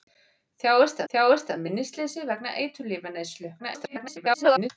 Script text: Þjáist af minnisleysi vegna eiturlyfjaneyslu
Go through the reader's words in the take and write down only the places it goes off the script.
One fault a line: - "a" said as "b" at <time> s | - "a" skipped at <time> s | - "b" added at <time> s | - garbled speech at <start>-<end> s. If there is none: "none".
- "þjáist" added at 1.1 s
- garbled speech at 3.6-4.7 s